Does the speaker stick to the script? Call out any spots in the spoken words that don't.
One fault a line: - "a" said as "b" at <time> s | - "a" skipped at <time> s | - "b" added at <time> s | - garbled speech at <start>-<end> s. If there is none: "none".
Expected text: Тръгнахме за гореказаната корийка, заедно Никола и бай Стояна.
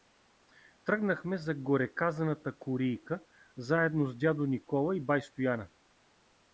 - "с дядо" added at 4.1 s